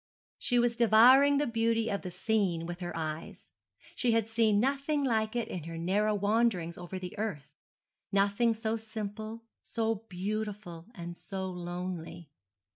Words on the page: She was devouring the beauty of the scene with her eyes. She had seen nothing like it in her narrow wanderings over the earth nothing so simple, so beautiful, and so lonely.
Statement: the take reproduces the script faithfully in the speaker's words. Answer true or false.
true